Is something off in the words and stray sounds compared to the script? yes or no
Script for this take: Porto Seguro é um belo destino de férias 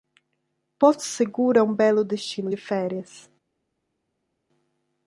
no